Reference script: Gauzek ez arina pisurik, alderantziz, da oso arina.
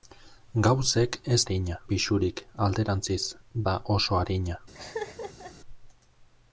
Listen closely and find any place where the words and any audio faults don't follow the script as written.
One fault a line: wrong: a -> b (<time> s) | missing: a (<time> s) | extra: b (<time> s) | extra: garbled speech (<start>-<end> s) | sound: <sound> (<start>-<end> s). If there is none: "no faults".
sound: laugh (4.7-5.5 s)